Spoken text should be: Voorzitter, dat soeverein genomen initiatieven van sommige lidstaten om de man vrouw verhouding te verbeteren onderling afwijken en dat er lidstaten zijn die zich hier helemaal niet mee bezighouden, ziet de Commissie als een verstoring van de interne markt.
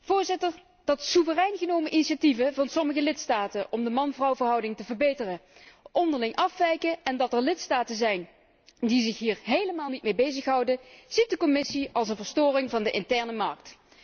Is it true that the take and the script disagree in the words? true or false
false